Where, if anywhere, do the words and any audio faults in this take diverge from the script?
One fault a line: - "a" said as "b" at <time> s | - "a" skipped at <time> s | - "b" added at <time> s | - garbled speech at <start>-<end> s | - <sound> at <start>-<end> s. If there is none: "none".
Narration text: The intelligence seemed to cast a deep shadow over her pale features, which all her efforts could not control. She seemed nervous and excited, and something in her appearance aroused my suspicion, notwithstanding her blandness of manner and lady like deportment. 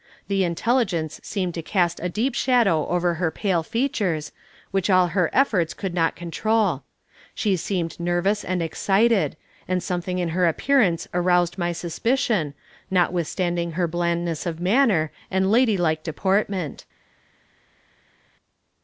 none